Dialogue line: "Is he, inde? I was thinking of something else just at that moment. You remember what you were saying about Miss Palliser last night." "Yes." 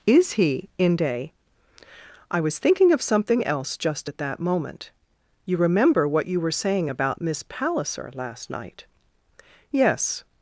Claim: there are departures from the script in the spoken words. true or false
false